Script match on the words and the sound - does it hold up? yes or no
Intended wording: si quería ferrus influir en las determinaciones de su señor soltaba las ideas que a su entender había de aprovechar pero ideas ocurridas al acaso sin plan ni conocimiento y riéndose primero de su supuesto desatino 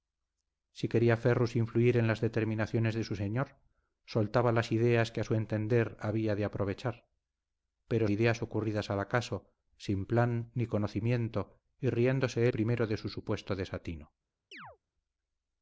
no